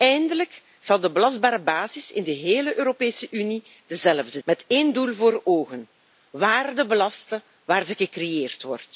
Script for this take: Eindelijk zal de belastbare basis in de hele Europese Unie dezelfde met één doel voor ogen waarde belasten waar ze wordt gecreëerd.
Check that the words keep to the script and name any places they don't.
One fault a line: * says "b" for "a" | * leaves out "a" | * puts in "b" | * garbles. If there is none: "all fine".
all fine